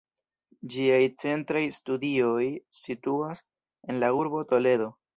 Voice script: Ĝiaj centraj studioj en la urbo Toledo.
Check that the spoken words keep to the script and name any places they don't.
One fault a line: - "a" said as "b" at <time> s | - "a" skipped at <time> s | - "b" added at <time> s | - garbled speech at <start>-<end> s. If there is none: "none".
- "situas" added at 2.8 s